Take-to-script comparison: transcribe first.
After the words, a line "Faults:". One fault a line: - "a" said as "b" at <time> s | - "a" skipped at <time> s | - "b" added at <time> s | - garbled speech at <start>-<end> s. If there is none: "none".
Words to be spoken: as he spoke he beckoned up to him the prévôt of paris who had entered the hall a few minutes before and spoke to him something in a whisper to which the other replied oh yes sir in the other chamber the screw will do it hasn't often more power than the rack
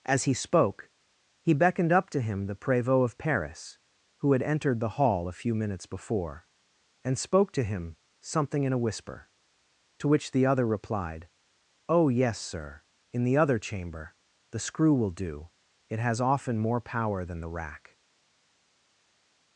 as he spoke he beckoned up to him the prévôt of paris who had entered the hall a few minutes before and spoke to him something in a whisper to which the other replied oh yes sir in the other chamber the screw will do it has often more power than the rack
Faults:
- "hasn't" said as "has" at 16.0 s